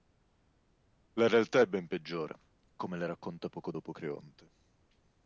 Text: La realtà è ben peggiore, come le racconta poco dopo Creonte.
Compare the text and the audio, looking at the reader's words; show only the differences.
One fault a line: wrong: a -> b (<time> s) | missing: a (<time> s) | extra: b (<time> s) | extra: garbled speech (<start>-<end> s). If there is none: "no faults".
no faults